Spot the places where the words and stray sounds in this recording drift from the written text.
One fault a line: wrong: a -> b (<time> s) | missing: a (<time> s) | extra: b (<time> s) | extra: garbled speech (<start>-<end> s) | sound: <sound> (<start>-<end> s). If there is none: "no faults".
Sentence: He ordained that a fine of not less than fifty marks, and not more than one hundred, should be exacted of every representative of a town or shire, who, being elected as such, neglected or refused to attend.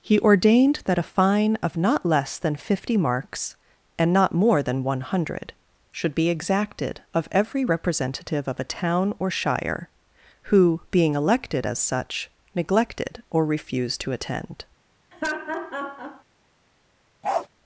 sound: laugh (15.1-16.2 s)
sound: bark (17.2-17.5 s)